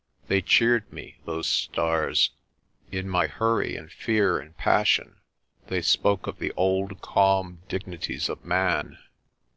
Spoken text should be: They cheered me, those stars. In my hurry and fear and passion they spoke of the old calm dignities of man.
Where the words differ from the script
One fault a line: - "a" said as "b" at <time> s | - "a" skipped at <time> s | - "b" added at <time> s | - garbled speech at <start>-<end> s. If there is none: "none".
none